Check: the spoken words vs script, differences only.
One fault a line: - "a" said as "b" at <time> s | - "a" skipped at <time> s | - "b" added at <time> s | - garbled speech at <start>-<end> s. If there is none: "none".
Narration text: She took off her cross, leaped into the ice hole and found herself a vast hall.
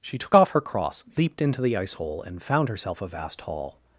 none